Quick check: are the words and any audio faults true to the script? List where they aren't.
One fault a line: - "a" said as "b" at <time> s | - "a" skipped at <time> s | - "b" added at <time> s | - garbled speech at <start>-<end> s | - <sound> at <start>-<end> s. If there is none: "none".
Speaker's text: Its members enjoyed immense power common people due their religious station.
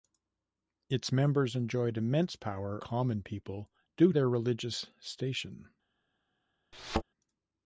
- thud at 6.7-7.0 s